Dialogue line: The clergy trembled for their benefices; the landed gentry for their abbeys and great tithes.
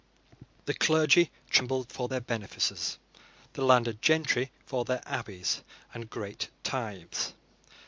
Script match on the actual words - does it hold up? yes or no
yes